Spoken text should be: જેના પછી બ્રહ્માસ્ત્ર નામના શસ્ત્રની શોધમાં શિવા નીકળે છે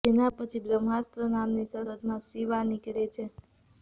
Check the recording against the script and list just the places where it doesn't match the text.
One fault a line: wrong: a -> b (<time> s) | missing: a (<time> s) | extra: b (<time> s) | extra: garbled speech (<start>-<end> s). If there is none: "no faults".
missing: શસ્ત્રની (1.8 s)